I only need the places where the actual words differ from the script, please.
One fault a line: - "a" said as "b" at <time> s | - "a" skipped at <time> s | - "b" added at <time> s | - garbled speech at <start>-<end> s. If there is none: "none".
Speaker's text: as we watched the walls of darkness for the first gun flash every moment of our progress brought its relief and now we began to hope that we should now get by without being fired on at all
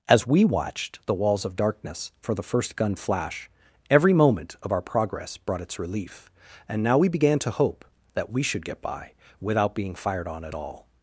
- "now" skipped at 8.7 s